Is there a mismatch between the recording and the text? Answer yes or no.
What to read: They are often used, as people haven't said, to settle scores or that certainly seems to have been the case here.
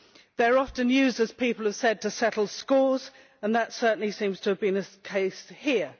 yes